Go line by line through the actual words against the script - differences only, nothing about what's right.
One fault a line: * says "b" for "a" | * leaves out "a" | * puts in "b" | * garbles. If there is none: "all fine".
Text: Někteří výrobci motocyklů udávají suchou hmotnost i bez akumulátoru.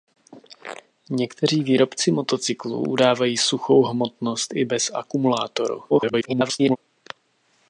* garbles